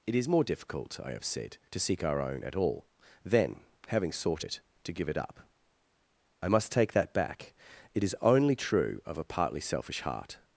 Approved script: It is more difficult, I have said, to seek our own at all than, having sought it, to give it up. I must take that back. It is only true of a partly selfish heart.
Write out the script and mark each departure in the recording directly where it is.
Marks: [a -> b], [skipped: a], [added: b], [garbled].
It is more difficult, I have said, to seek our own at all than, having sought it, to give it up. I must take that back. It is only true of a partly selfish heart.